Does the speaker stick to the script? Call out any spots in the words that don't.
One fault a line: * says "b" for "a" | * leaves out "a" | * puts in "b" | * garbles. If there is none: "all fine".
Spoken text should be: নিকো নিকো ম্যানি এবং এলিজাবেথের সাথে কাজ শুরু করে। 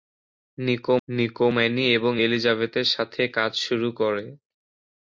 all fine